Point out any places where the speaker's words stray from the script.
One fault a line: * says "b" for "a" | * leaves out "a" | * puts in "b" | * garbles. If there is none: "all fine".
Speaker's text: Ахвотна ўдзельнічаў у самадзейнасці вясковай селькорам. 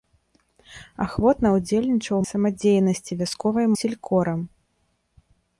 all fine